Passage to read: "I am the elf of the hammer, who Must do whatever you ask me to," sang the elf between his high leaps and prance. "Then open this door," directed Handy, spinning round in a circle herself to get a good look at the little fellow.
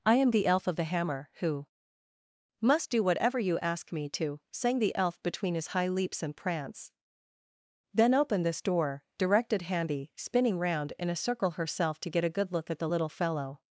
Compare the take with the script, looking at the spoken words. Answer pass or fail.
pass